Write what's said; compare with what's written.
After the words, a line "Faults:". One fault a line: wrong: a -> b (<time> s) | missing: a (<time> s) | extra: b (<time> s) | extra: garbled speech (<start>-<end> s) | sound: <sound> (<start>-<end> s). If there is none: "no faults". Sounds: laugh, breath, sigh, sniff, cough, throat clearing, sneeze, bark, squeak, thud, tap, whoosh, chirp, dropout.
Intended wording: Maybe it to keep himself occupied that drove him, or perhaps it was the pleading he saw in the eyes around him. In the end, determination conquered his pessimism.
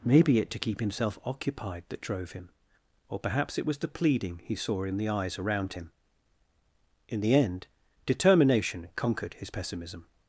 Maybe it to keep himself occupied that drove him, or perhaps it was the pleading he saw in the eyes around him. In the end, determination conquered his pessimism.
Faults:
no faults